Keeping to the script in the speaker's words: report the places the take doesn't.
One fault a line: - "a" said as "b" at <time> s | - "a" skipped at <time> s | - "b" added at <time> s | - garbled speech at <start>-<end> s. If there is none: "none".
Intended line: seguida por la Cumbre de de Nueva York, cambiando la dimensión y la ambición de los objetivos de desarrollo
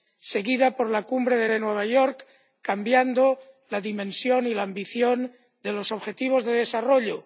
none